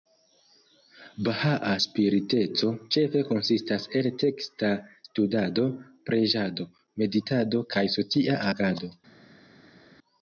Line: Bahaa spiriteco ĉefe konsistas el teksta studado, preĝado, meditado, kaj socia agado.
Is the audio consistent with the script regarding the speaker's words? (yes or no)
yes